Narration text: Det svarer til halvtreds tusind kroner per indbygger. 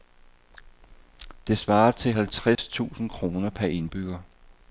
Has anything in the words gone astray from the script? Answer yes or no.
no